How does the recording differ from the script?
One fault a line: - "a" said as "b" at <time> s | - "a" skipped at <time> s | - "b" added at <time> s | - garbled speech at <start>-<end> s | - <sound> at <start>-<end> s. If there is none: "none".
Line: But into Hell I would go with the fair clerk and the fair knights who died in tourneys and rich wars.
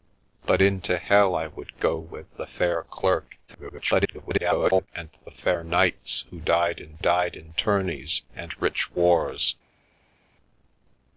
- garbled speech at 3.5-4.9 s
- "died in" added at 7.0 s